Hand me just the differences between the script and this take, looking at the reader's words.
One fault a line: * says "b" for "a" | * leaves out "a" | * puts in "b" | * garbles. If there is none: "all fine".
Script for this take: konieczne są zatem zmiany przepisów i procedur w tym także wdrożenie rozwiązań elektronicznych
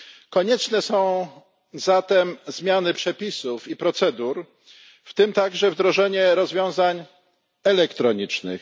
all fine